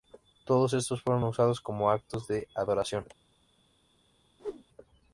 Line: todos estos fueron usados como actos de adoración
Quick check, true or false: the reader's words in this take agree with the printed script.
true